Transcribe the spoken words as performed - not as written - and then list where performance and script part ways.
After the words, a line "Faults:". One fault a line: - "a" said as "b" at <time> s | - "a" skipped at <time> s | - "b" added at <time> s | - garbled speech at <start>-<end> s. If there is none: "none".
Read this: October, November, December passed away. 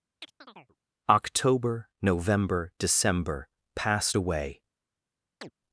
October, November, December passed away.
Faults:
none